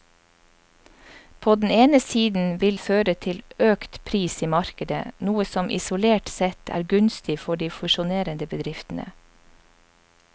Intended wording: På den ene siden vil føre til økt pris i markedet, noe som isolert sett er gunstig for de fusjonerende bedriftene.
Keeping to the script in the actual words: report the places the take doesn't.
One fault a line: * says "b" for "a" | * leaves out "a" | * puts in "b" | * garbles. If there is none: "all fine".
all fine